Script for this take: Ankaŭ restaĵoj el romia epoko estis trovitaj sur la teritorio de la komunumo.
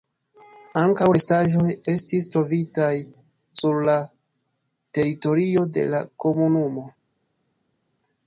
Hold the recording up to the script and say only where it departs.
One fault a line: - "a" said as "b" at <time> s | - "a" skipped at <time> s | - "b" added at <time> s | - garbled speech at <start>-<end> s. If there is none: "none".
- "el romia epoko" skipped at 1.6 s